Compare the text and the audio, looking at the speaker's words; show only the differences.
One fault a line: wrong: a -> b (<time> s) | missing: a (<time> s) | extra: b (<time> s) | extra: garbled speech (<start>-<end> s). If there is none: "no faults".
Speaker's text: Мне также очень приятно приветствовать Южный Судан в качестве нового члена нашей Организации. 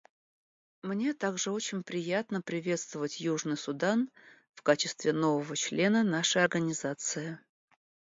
no faults